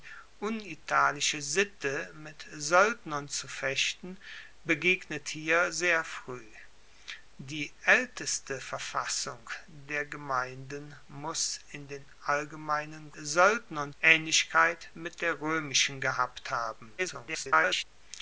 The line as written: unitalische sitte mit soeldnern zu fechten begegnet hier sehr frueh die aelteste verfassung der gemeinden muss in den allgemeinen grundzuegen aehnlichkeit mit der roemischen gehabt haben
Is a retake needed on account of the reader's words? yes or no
yes